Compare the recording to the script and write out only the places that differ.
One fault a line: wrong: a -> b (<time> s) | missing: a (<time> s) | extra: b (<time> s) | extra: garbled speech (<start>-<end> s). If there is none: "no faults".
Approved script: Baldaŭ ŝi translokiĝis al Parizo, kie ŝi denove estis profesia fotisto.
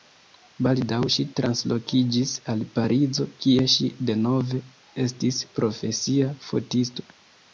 no faults